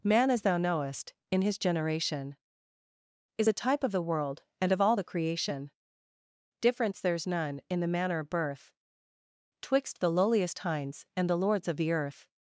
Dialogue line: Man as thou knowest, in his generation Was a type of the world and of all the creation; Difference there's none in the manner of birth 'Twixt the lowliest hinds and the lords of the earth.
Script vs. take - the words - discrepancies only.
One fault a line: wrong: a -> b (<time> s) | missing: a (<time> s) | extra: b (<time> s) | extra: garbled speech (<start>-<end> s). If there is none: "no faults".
wrong: Was -> Is (3.4 s)